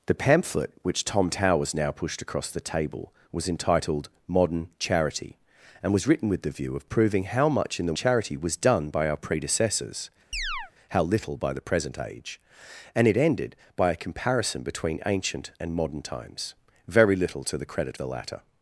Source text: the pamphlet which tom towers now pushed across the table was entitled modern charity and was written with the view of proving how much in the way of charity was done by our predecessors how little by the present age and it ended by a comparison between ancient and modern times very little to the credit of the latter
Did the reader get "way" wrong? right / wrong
wrong